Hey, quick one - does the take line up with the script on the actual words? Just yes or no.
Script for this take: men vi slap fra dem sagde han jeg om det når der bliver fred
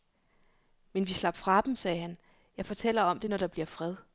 no